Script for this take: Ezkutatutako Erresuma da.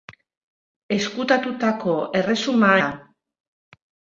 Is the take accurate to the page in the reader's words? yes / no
yes